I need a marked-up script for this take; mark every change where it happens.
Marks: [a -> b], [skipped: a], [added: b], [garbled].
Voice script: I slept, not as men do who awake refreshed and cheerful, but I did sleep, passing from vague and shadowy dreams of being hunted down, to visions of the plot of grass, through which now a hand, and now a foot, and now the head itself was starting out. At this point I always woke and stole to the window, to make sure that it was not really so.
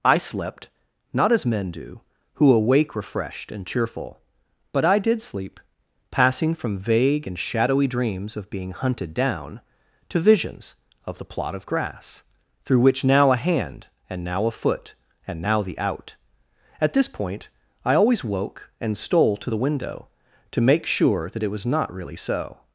I slept, not as men do who awake refreshed and cheerful, but I did sleep, passing from vague and shadowy dreams of being hunted down, to visions of the plot of grass, through which now a hand, and now a foot, and now the [skipped: head itself was starting] out. At this point I always woke and stole to the window, to make sure that it was not really so.